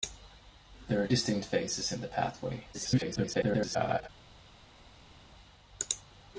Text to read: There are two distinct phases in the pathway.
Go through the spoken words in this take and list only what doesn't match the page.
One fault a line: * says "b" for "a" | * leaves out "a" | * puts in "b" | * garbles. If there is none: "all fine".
* leaves out "two"
* garbles